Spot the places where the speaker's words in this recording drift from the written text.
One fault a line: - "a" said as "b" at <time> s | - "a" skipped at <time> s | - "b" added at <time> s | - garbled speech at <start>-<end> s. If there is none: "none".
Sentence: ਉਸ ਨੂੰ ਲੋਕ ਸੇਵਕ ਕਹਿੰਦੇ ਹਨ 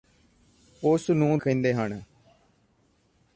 - "ਲੋਕ ਸੇਵਕ" skipped at 1.4 s